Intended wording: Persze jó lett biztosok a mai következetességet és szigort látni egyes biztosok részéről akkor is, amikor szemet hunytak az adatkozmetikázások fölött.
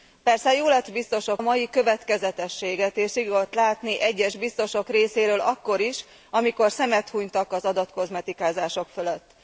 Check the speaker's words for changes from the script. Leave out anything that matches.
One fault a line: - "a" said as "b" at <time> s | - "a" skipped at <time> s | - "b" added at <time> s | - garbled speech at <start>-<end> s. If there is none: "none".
none